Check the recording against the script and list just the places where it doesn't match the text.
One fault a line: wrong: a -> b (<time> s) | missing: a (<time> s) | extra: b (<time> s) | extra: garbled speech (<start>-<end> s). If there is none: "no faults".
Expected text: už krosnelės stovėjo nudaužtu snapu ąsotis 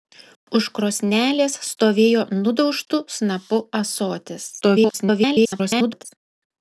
extra: garbled speech (4.6-6.1 s)